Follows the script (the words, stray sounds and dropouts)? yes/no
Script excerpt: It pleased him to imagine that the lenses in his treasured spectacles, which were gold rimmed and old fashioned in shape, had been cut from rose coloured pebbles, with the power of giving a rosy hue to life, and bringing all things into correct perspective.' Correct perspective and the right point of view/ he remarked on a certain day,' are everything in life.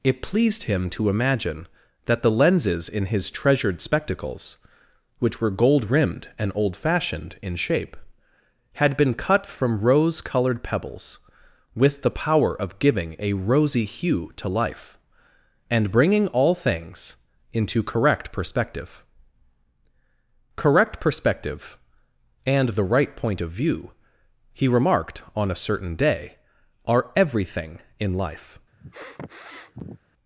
no